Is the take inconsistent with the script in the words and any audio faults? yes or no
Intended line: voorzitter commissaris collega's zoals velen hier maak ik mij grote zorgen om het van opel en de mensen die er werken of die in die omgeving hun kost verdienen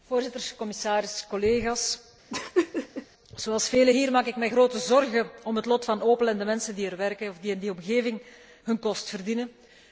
yes